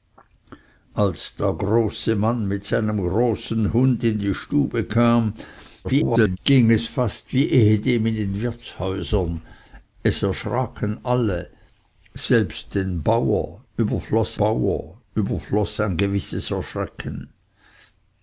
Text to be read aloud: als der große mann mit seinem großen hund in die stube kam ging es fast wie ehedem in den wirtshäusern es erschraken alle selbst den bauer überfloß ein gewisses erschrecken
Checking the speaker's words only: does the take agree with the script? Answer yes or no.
no